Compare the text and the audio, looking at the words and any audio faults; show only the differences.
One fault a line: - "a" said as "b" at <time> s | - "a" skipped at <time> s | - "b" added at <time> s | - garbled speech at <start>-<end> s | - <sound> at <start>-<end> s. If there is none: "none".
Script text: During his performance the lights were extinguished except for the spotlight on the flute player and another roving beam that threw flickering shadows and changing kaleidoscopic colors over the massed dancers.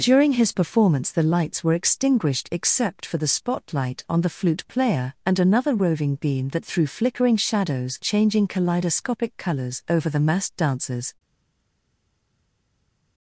- "and" skipped at 8.0 s